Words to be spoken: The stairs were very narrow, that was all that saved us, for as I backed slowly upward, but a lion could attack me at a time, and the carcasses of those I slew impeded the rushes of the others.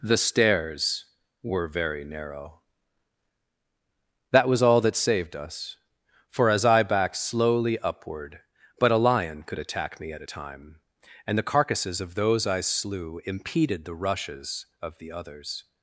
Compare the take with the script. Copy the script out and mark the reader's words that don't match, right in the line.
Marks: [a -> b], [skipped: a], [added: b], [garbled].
The stairs were very narrow, that was all that saved us, for as I backed slowly upward, but a lion could attack me at a time, and the carcasses of those I slew impeded the rushes of the others.